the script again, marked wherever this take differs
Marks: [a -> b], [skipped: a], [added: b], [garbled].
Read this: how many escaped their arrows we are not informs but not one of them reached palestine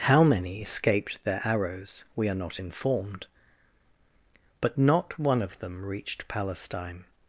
how many escaped their arrows we are not [informs -> informed] but not one of them reached palestine